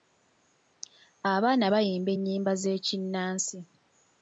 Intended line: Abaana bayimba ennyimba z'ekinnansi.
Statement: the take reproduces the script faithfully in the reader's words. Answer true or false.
true